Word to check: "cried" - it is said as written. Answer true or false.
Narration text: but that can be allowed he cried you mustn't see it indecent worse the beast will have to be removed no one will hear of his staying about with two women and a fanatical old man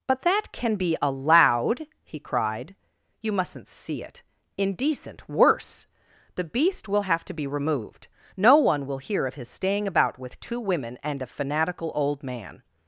true